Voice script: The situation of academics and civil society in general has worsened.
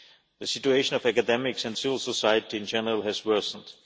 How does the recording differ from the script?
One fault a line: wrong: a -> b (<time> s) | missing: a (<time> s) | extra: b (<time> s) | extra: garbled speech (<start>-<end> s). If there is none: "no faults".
no faults